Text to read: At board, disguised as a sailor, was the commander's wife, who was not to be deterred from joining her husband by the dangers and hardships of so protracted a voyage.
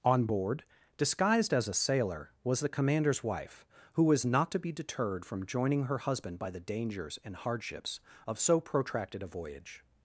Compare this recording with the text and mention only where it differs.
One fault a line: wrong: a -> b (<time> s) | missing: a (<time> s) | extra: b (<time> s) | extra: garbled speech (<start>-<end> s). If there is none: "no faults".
wrong: At -> On (0.0 s)